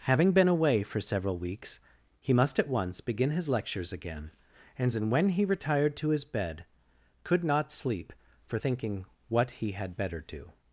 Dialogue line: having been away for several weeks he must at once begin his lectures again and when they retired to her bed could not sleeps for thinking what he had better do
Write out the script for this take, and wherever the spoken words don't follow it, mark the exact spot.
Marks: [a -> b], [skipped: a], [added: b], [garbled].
having been away for several weeks he must at once begin his lectures again and when [they -> he] retired to [her -> his] bed could not [sleeps -> sleep] for thinking what he had better do